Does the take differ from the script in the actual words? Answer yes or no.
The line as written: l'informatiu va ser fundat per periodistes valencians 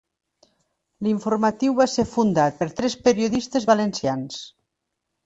yes